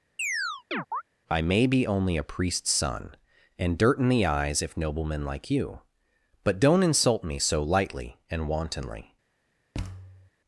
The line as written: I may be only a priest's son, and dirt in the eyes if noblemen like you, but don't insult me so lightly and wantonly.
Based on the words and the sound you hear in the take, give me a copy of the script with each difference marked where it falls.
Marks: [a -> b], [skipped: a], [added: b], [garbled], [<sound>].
[chirp] I may be only a priest's son, and dirt in the eyes if noblemen like you, but don't insult me so lightly and wantonly. [thud]